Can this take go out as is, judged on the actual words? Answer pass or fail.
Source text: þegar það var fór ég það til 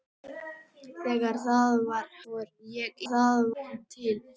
pass